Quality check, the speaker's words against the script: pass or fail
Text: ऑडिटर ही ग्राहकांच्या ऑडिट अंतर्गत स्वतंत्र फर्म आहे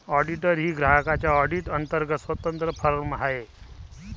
pass